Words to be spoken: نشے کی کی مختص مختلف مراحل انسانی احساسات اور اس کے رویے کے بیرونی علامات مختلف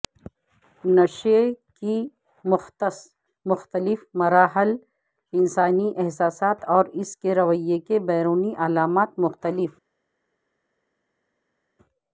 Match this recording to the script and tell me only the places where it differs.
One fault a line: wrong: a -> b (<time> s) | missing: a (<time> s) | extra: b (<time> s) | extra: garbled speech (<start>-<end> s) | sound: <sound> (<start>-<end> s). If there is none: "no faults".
missing: کی (2.0 s)